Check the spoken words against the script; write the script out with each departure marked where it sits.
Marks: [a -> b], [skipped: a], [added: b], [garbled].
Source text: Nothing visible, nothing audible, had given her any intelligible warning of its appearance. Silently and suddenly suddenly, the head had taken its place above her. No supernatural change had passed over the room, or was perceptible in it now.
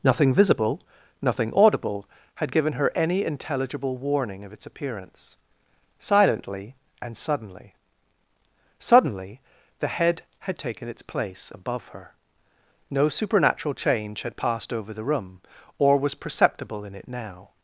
Nothing visible, nothing audible, had given her any intelligible warning of its appearance. Silently and suddenly suddenly, the head had taken its place above her. No supernatural change had passed over the room, or was perceptible in it now.